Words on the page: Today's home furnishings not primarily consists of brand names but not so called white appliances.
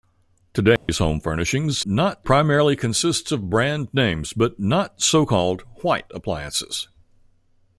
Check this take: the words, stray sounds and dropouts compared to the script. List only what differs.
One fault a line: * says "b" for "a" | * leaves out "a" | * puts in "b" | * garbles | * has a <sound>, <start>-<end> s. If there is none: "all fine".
* has a dropout, 0.8-0.9 s